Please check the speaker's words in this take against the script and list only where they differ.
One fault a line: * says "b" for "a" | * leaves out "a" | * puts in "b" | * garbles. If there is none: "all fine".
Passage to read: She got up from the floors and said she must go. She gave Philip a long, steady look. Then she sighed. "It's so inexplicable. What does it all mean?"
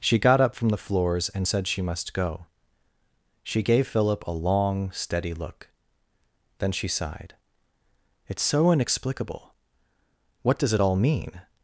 all fine